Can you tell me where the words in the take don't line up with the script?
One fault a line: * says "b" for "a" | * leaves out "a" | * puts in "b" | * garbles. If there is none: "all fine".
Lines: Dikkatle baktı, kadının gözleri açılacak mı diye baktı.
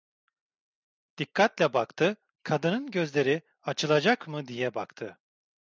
all fine